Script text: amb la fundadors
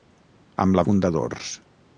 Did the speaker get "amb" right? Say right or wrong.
right